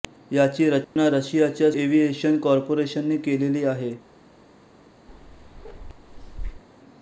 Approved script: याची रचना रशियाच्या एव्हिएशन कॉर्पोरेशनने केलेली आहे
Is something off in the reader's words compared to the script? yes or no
no